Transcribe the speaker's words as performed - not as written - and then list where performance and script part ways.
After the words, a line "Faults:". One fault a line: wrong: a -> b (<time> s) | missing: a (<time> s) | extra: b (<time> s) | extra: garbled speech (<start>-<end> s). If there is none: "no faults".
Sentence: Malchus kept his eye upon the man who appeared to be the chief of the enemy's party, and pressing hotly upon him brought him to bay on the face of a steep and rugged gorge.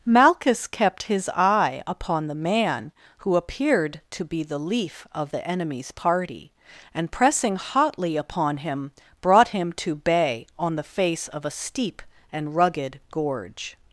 Malchus kept his eye upon the man who appeared to be the leaf of the enemy's party, and pressing hotly upon him brought him to bay on the face of a steep and rugged gorge.
Faults:
wrong: chief -> leaf (4.6 s)